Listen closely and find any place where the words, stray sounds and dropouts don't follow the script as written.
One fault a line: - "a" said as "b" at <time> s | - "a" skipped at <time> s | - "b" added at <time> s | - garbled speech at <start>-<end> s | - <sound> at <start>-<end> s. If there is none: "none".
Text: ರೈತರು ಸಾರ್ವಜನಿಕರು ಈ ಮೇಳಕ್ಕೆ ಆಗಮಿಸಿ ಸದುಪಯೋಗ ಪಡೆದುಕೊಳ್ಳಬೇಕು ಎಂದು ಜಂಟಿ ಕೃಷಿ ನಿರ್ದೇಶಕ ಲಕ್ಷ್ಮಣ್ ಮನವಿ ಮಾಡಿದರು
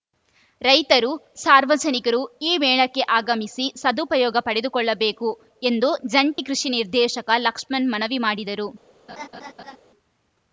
- dropout at 6.3-6.4 s
- laugh at 9.1-9.8 s